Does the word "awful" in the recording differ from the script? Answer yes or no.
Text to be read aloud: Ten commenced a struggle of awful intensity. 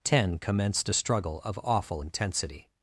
no